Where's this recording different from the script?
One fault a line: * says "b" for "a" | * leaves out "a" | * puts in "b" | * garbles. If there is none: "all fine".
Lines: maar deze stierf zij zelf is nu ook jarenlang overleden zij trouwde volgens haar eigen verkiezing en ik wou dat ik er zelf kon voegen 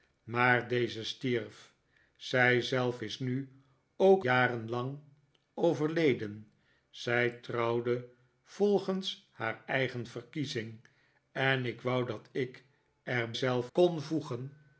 all fine